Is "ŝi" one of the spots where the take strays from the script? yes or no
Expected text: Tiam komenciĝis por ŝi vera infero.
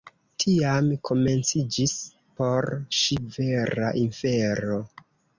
no